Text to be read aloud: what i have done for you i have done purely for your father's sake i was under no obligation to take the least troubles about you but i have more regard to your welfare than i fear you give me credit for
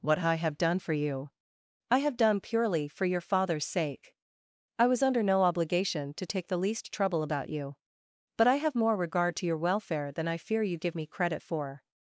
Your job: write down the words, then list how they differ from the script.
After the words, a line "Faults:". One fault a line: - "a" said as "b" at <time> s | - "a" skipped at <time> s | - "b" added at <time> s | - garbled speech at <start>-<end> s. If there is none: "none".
what i have done for you i have done purely for your father's sake i was under no obligation to take the least trouble about you but i have more regard to your welfare than i fear you give me credit for
Faults:
- "troubles" said as "trouble" at 6.9 s